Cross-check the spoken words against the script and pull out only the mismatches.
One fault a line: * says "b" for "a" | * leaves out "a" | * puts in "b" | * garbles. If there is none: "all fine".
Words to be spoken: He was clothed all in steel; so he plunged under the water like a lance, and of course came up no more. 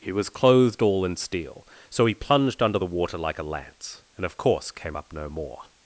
all fine